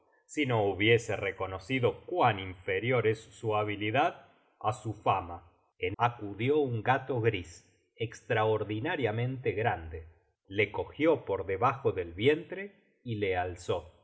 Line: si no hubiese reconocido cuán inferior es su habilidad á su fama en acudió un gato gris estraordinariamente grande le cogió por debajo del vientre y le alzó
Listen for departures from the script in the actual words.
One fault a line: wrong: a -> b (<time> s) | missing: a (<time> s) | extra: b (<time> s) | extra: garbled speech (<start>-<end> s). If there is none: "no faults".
no faults